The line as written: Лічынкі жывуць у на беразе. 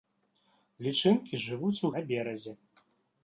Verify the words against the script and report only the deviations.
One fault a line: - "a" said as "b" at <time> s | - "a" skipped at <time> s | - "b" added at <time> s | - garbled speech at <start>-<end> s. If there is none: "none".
none